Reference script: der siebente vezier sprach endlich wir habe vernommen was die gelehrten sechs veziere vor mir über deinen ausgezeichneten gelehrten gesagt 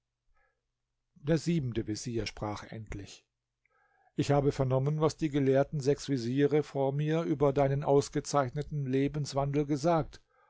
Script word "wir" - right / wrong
wrong